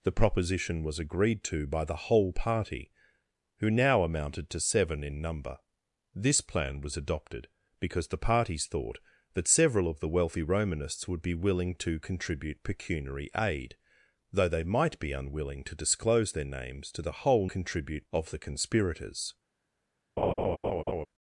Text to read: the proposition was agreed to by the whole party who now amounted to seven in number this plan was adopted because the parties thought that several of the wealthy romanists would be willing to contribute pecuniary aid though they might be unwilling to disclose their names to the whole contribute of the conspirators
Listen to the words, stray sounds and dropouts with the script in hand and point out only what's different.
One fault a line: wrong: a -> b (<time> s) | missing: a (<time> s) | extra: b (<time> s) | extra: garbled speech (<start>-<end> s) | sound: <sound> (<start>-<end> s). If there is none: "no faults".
sound: laugh (20.2-21.1 s)